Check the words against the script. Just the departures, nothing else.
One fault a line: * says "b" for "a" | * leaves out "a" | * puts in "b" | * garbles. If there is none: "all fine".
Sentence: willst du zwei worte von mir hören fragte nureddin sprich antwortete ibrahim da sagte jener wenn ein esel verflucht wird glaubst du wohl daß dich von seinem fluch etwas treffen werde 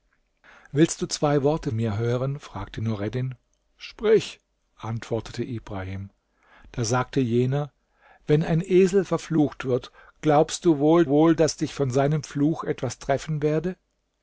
* leaves out "von"
* puts in "wohl"